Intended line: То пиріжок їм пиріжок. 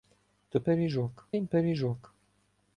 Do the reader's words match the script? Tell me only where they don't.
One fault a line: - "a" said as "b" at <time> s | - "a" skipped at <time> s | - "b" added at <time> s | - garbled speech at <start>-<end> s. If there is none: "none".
none